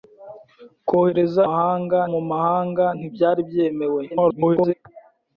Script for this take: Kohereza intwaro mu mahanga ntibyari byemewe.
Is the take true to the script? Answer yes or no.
no